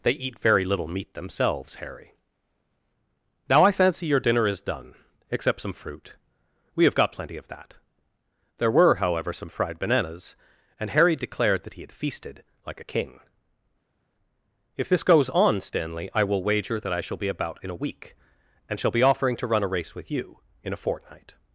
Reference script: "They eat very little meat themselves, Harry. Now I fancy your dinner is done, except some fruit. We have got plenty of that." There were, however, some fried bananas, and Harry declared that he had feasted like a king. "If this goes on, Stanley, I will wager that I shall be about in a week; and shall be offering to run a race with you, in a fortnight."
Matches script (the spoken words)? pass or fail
pass